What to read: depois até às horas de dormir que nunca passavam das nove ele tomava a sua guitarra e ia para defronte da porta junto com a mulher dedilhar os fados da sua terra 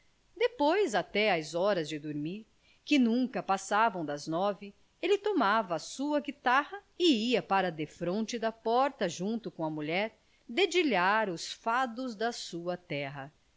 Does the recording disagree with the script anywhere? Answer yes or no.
no